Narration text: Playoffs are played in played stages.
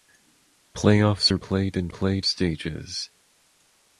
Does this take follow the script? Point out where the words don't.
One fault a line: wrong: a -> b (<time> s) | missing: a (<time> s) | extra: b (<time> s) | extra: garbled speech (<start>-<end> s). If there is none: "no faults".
no faults